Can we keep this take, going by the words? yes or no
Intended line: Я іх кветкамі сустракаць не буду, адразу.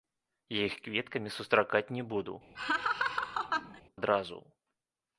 yes